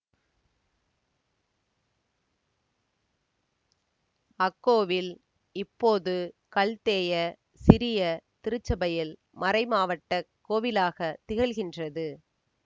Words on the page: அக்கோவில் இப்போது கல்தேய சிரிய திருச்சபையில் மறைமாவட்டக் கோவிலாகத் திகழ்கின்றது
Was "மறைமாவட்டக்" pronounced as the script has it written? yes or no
yes